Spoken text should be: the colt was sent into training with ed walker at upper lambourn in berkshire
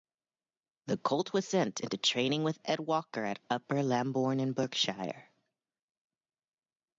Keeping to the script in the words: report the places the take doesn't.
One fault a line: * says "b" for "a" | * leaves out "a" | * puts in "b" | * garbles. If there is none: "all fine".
all fine